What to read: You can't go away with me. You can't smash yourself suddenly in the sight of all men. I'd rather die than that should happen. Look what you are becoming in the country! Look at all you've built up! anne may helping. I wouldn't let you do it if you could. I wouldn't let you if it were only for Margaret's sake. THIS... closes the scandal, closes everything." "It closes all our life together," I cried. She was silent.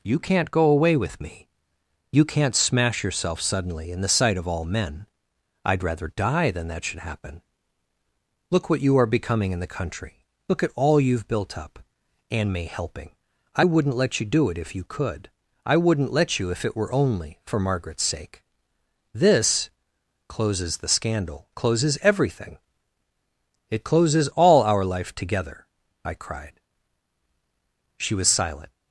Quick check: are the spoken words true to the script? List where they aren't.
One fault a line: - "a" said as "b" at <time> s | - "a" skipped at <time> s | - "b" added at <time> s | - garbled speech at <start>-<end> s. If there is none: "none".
none